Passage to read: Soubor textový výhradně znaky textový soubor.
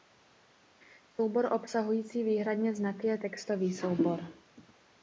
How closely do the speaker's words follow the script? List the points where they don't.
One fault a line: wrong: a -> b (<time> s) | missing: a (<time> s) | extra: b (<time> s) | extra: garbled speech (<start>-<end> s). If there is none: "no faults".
wrong: textový -> obsahující (1.5 s)
extra: je (3.1 s)